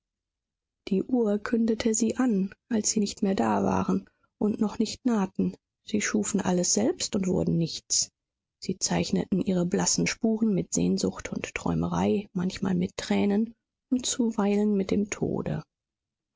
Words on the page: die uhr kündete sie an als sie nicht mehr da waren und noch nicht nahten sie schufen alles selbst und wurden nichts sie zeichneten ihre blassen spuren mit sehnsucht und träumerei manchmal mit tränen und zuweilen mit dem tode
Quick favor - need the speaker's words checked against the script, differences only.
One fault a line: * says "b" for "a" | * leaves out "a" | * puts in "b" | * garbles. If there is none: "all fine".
all fine